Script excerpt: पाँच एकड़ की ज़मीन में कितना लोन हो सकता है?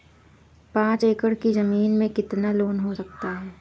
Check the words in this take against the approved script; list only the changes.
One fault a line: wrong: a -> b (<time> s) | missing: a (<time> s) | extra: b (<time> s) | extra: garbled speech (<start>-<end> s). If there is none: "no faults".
no faults